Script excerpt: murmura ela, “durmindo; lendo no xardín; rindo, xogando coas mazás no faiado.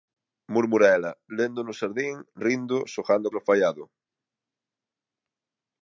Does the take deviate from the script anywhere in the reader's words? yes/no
yes